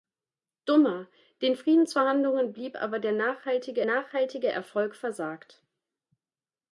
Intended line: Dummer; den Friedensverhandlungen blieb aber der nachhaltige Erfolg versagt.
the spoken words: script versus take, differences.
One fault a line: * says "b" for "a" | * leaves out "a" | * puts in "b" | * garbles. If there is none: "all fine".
* puts in "nachhaltige"